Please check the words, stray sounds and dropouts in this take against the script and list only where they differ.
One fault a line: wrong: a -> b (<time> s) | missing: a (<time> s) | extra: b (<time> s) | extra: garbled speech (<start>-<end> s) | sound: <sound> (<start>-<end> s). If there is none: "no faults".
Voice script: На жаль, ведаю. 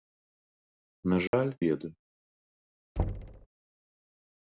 sound: dropout (1.3-1.3 s)
sound: thud (3.0-3.5 s)